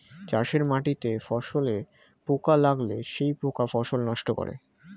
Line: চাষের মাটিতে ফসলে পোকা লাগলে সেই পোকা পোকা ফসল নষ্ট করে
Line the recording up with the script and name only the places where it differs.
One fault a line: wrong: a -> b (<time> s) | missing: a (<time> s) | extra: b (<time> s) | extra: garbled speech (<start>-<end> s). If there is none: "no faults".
missing: পোকা (3.6 s)